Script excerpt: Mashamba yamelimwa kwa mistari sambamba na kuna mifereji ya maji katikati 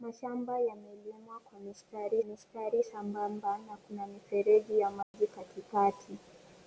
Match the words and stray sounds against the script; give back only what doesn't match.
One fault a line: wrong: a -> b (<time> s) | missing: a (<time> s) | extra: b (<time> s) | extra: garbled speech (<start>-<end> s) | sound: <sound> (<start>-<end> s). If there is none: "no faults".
extra: mistari (2.2 s)
sound: dropout (5.0-5.1 s)